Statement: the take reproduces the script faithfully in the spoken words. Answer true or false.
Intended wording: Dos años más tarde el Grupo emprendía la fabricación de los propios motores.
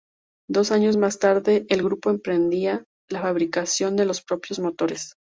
true